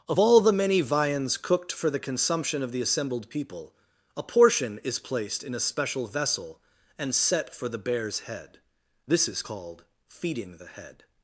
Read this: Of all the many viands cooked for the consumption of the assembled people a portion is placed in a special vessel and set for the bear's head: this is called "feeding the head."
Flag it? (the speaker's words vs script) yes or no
no